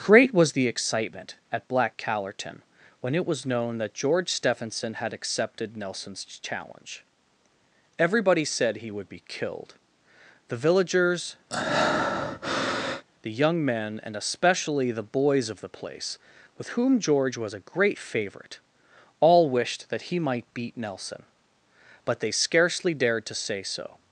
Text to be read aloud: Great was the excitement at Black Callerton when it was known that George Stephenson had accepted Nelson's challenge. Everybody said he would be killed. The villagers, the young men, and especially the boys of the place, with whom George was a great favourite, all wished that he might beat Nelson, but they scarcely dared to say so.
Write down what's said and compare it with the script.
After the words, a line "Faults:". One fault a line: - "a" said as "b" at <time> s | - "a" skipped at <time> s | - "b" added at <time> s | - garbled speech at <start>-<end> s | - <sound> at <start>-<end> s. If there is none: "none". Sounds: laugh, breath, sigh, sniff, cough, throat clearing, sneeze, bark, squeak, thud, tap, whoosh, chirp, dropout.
Great was the excitement at Black Callerton when it was known that George Stephenson had accepted Nelson's challenge. Everybody said he would be killed. The villagers, the young men, and especially the boys of the place, with whom George was a great favourite, all wished that he might beat Nelson, but they scarcely dared to say so.
Faults:
- breath at 11.5-13.0 s